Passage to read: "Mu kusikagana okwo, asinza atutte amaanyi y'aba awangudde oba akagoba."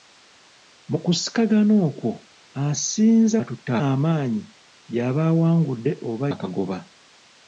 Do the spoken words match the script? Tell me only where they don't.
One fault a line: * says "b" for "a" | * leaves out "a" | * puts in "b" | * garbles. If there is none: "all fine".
all fine